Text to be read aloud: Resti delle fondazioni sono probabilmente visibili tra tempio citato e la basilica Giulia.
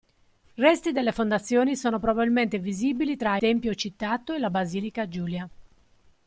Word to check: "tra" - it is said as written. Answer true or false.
true